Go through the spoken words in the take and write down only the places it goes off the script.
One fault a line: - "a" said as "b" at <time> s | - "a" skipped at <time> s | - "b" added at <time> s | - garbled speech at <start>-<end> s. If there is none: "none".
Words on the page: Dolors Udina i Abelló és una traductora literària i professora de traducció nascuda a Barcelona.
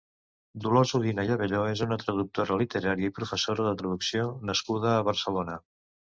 none